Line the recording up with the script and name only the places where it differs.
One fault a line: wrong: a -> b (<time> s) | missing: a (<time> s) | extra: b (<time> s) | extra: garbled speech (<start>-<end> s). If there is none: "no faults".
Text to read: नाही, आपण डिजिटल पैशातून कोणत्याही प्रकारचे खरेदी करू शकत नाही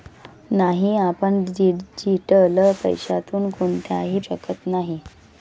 missing: प्रकारचे खरेदी करू (4.2 s)